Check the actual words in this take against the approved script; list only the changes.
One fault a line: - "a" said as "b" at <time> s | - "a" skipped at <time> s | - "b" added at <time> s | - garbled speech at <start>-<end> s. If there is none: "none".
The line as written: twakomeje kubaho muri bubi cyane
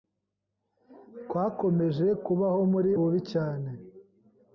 none